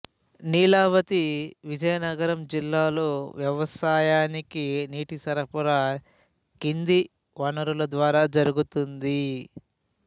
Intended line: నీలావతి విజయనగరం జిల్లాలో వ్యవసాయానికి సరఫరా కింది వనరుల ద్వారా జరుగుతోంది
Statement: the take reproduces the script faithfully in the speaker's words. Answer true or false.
false